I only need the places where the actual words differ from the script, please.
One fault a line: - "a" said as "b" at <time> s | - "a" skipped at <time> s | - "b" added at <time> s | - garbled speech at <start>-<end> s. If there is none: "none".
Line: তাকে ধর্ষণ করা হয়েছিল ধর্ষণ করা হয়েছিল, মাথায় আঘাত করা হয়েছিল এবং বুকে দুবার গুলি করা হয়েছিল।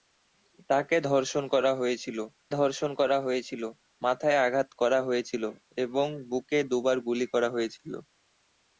none